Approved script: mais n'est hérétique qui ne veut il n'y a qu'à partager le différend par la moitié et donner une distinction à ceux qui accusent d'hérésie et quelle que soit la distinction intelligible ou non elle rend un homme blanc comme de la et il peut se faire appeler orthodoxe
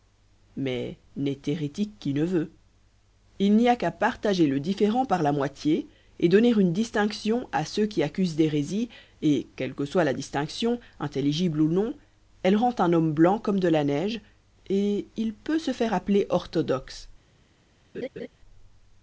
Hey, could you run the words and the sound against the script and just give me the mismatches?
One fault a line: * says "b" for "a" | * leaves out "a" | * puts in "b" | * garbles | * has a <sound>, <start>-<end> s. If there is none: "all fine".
* puts in "neige"
* has a laugh, 17.9-18.3 s